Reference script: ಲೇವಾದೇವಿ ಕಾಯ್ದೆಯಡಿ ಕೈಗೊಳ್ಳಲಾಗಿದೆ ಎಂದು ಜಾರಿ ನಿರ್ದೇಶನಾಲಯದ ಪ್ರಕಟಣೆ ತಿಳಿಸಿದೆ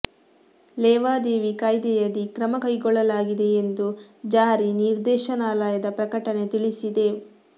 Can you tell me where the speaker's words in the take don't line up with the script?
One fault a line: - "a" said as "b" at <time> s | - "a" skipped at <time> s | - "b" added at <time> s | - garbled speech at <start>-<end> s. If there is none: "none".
- "ಕ್ರಮ" added at 2.3 s